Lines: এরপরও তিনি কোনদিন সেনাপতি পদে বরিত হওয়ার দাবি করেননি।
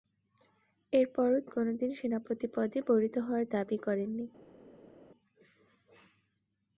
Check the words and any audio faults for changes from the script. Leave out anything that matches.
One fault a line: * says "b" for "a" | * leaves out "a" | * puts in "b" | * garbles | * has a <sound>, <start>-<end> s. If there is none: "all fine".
* leaves out "তিনি"